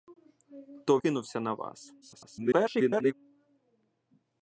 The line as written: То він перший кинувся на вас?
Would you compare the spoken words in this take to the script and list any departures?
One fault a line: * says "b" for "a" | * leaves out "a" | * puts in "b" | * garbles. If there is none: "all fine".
* leaves out "він перший"
* garbles